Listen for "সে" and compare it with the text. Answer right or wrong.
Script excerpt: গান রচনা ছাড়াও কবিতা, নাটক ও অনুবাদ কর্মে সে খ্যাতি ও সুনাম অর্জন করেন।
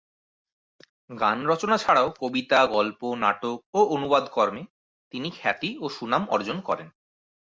wrong